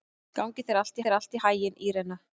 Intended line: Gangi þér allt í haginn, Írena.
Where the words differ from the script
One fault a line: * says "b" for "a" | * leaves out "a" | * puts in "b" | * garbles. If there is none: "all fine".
* puts in "þér allt"